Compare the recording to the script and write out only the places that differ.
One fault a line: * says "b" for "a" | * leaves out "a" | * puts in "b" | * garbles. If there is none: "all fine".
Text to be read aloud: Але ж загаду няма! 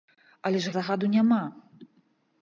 all fine